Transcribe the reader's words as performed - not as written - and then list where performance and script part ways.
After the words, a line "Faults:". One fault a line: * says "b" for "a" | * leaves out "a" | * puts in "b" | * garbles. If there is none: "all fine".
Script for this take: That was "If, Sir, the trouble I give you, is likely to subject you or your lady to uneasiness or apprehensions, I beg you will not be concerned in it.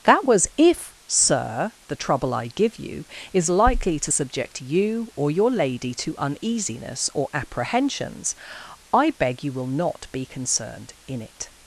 That was "If, Sir, the trouble I give you, is likely to subject you or your lady to uneasiness or apprehensions, I beg you will not be concerned in it.
Faults:
all fine